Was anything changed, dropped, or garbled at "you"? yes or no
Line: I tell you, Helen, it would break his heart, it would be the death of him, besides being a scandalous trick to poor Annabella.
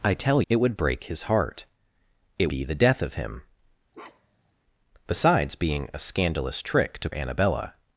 yes